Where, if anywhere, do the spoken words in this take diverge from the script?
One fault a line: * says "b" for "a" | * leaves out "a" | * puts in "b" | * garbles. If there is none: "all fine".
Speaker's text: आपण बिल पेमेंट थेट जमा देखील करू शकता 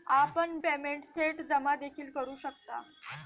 * leaves out "बिल"